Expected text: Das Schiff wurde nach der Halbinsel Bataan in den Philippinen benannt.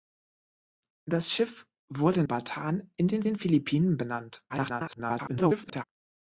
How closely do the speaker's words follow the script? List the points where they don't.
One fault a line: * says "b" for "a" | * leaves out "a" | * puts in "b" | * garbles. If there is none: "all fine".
* leaves out "nach der Halbinsel"
* puts in "den"
* garbles